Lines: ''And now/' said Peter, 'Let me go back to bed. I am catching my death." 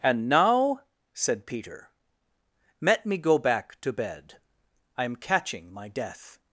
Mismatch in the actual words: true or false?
false